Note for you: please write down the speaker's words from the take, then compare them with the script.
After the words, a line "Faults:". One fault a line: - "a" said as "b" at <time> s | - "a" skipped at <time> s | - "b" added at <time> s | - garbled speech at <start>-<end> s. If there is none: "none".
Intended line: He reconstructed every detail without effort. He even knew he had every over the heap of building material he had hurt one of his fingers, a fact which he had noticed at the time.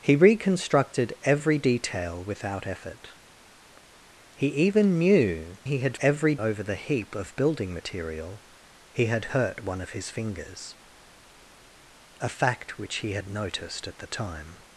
He reconstructed every detail without effort. He even knew he had every over the heap of building material he had hurt one of his fingers, a fact which he had noticed at the time.
Faults:
none